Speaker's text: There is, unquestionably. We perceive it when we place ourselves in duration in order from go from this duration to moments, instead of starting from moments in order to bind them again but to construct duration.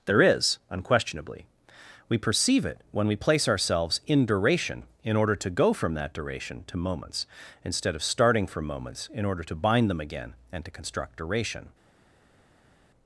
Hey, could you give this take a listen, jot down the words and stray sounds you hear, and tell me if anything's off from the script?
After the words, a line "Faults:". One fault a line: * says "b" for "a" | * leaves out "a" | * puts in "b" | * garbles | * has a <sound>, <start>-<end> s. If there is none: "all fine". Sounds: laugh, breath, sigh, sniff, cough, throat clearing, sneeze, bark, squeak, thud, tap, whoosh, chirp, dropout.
There is, unquestionably. We perceive it when we place ourselves in duration in order to go from that duration to moments, instead of starting from moments in order to bind them again and to construct duration.
Faults:
* says "to" for "from"
* says "that" for "this"
* says "and" for "but"